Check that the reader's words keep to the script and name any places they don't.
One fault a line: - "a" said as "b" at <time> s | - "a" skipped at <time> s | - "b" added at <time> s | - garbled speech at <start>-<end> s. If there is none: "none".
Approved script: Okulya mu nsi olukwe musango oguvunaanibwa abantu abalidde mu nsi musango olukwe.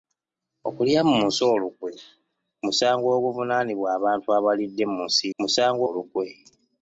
none